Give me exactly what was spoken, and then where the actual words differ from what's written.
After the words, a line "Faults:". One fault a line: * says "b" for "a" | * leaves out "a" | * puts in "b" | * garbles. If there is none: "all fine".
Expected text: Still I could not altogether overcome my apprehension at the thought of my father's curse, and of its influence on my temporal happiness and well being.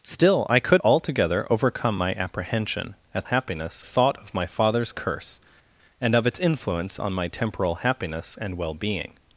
Still I could altogether overcome my apprehension at happiness thought of my father's curse, and of its influence on my temporal happiness and well being.
Faults:
* leaves out "not"
* says "happiness" for "the"